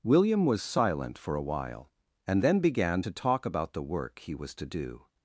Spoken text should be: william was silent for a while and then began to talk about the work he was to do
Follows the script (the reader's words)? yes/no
yes